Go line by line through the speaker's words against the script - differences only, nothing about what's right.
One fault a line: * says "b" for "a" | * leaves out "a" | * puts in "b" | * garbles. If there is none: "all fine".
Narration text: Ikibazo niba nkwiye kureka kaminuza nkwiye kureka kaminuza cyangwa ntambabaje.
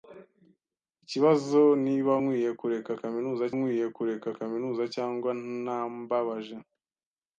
all fine